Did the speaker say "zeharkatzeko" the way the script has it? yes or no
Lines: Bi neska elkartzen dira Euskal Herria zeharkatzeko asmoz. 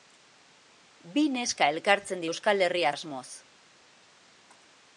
no